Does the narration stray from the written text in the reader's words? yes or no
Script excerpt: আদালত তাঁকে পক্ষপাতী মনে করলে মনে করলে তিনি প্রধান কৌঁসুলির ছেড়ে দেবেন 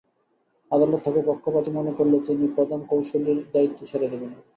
yes